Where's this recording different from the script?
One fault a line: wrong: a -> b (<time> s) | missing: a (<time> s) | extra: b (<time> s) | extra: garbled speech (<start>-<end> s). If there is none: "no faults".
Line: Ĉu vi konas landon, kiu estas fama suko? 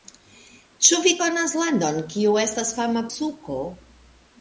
no faults